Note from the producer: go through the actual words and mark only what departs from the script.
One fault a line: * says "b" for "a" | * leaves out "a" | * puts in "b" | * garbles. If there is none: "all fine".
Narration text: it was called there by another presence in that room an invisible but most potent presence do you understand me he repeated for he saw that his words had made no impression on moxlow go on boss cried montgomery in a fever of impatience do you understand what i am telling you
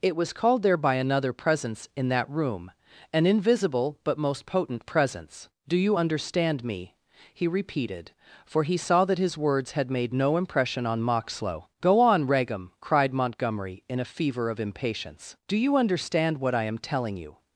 * says "regum" for "boss"